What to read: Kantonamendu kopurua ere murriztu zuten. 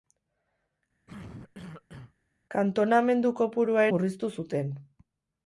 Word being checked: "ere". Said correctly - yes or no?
no